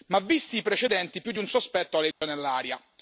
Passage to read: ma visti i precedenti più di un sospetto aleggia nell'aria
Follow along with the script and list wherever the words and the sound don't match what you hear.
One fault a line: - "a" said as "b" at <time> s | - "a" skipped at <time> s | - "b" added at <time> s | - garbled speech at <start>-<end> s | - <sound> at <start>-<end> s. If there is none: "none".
- dropout at 2.1-2.2 s